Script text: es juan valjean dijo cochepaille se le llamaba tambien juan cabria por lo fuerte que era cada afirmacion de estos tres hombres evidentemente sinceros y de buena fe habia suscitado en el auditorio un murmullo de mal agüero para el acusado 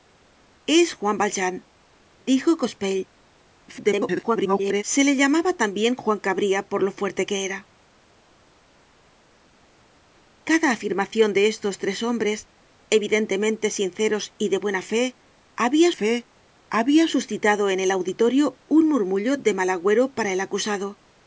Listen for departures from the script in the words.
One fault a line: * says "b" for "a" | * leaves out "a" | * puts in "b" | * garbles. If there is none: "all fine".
* garbles
* puts in "fe habia"